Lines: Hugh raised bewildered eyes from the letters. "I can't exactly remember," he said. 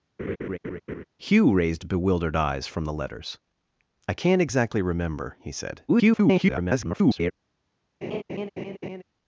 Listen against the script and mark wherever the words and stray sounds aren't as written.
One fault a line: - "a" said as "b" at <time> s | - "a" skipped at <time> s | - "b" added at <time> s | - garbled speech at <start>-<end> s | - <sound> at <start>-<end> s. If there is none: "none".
- laugh at 0.2-1.0 s
- garbled speech at 5.9-7.3 s
- laugh at 8.0-9.0 s